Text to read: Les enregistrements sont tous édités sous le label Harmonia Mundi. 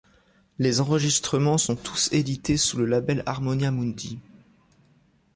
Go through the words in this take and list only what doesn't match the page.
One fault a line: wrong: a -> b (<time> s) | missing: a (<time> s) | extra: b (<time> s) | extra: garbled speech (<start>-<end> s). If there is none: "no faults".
no faults